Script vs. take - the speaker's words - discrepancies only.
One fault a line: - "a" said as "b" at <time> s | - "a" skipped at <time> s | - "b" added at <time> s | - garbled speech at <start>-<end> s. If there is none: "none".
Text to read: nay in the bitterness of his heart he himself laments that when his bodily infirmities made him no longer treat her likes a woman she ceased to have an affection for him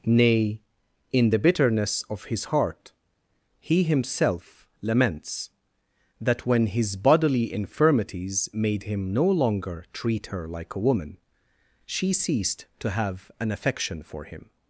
- "likes" said as "like" at 10.5 s